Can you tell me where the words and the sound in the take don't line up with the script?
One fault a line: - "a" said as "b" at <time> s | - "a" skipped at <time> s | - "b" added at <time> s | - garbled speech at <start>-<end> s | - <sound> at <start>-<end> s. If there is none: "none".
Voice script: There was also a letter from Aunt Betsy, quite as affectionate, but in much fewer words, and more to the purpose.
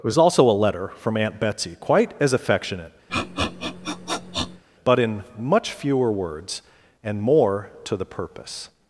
- "There" said as "It" at 0.0 s
- sniff at 3.1-4.6 s